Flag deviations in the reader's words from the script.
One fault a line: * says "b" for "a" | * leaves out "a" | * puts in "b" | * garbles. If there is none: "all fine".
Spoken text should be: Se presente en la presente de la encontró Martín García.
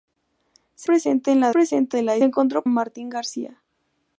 all fine